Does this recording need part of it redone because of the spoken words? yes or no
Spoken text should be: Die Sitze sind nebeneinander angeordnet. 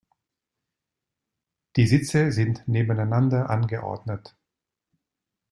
no